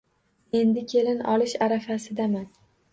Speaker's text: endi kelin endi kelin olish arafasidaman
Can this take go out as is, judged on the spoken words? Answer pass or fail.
fail